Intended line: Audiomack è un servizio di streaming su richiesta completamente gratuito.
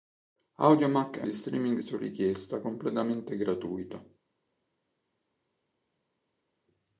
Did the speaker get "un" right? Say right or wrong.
wrong